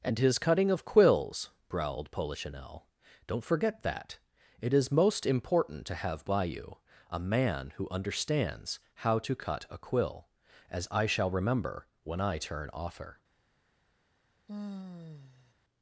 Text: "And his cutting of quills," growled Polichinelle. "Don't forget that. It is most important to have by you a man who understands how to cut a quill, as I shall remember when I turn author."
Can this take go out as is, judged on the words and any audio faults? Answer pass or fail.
fail